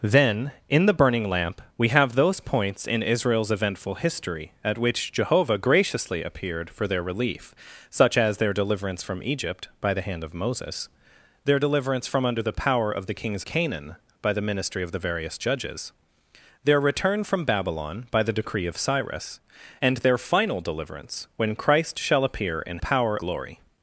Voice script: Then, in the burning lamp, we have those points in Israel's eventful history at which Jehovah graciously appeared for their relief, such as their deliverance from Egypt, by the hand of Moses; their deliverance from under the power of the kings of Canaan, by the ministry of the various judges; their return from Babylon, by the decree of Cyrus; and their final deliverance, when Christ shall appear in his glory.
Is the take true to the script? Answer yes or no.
no